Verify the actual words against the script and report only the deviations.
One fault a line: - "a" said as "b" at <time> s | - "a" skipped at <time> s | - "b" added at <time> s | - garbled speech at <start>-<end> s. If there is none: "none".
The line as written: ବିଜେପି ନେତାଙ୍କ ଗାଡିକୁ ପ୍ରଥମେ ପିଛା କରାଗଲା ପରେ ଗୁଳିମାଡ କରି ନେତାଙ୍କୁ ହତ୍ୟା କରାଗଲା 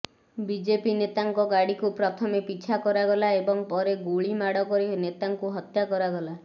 - "ଏବଂ" added at 3.4 s